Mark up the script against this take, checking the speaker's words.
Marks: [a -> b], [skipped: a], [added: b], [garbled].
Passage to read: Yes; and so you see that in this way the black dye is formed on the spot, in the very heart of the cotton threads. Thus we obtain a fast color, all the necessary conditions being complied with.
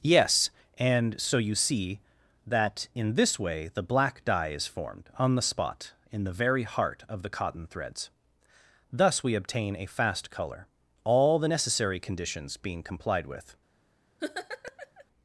Yes; and so you see that in this way the black dye is formed on the spot, in the very heart of the cotton threads. Thus we obtain a fast color, all the necessary conditions being complied with.